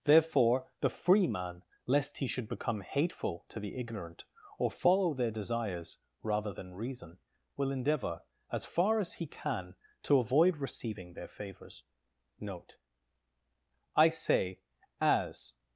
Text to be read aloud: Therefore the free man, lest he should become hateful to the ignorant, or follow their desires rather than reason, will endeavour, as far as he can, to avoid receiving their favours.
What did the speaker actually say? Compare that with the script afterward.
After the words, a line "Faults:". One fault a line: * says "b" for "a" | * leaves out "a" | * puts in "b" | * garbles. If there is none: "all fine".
Therefore the free man, lest he should become hateful to the ignorant, or follow their desires rather than reason, will endeavour, as far as he can, to avoid receiving their favours. Note. I say, as
Faults:
* puts in "Note I say as"